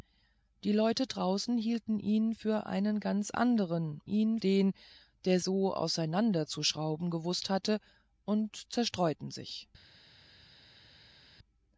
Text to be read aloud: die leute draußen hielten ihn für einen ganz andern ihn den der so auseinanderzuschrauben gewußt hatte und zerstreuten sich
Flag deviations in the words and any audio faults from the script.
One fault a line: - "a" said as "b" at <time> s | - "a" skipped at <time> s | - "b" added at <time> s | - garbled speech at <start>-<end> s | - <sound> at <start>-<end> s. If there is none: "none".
none